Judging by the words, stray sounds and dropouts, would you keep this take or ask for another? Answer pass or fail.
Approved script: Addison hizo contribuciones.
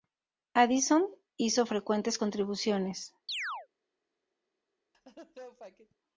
fail